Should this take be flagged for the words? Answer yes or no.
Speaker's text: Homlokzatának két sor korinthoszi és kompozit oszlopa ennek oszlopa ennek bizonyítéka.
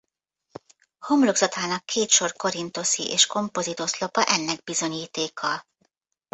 yes